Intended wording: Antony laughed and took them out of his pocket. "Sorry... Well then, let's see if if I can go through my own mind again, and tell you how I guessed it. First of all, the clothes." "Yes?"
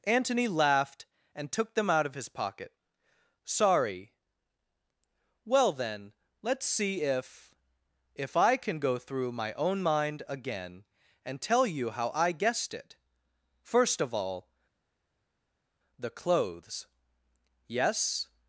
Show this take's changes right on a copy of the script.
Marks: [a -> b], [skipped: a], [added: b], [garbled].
Antony laughed and took them out of his pocket. "Sorry... Well then, let's see if if I can go through my own mind again, and tell you how I guessed it. First of all, the clothes." "Yes?"